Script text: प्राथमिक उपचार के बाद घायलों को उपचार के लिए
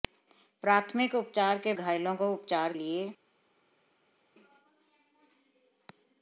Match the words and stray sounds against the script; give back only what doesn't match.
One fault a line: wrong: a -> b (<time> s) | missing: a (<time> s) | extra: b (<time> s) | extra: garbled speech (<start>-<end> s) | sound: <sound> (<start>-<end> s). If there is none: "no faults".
missing: बाद (1.7 s)
missing: के (2.7 s)